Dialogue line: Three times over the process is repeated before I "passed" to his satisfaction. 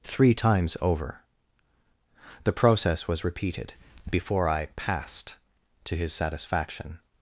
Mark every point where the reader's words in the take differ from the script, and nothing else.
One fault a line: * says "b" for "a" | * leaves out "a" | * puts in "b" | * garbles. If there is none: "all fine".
* says "was" for "is"